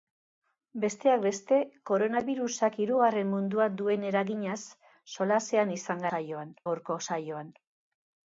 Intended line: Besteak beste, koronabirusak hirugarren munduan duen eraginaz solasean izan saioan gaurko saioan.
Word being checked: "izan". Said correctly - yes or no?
yes